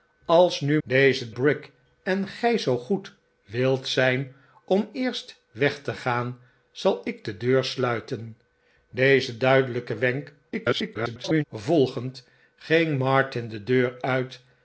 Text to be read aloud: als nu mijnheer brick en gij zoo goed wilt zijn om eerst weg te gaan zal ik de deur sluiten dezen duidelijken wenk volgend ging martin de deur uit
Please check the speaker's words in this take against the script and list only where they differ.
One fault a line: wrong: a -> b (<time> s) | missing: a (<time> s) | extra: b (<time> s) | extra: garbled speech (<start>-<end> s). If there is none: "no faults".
wrong: mijnheer -> dezen (0.8 s)
extra: garbled speech (10.5-11.4 s)